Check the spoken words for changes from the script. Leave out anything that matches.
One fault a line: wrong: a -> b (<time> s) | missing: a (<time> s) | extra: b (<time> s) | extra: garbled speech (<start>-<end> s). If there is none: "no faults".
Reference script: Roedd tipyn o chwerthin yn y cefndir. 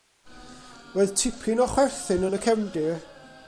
no faults